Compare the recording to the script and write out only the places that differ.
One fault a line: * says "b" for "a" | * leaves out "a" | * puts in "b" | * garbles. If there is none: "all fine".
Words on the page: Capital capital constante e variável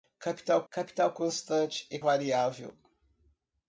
all fine